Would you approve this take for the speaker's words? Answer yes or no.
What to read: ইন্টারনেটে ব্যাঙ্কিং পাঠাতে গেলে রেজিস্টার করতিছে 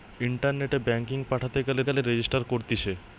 no